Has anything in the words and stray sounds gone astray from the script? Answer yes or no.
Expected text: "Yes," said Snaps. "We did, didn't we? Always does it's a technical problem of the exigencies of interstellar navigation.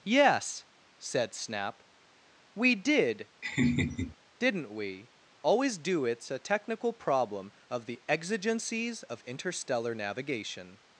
yes